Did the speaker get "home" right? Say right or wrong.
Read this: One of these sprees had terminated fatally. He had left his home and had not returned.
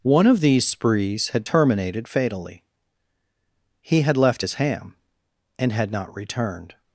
wrong